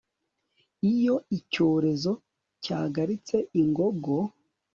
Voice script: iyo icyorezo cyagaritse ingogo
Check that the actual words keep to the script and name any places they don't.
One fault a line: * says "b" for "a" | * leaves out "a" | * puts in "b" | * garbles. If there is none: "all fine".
all fine